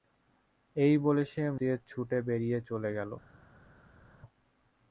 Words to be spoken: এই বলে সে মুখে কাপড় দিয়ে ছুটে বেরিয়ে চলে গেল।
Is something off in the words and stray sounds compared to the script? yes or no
yes